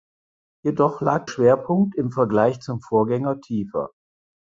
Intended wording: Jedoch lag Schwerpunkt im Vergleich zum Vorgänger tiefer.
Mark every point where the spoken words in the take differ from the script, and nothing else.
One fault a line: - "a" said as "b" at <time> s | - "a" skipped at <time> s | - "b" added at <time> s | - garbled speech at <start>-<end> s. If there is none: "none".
none